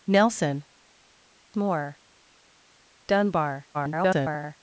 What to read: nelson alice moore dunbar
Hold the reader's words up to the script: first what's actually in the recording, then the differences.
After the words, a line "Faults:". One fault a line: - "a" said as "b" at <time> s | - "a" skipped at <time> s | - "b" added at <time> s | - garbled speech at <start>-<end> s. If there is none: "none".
nelson moore dunbar [garbled]
Faults:
- "alice" skipped at 0.7 s
- garbled speech at 3.7-4.6 s